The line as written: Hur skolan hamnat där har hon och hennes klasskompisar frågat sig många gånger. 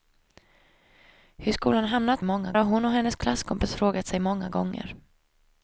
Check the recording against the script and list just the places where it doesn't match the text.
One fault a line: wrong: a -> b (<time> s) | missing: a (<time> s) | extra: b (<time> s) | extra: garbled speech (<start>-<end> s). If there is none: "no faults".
wrong: där -> många (2.2 s)